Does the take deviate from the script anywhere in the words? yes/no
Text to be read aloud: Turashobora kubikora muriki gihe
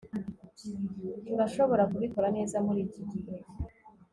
yes